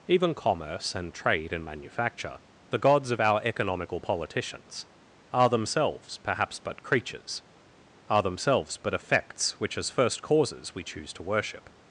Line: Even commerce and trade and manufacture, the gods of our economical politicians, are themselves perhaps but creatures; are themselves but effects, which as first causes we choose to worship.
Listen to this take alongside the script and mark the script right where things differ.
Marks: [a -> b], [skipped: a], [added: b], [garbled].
Even commerce and trade and manufacture, the gods of our economical politicians, are themselves perhaps but creatures; are themselves but effects, which as first causes we choose to worship.